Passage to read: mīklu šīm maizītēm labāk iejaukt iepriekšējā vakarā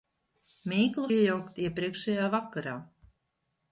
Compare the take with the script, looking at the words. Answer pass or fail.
fail